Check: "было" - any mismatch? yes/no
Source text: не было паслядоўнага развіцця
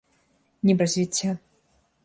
yes